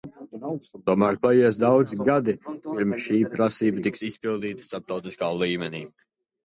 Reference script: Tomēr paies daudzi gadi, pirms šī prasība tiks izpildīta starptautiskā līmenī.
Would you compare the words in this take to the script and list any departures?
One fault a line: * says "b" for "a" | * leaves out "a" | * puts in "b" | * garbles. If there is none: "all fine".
all fine